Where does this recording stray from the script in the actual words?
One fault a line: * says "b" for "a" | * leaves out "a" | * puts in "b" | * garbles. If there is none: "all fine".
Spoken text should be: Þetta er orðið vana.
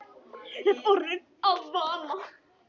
* puts in "að"